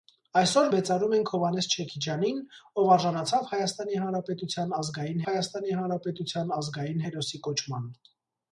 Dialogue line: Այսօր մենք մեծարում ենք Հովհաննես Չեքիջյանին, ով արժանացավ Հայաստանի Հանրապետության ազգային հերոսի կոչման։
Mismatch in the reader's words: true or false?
true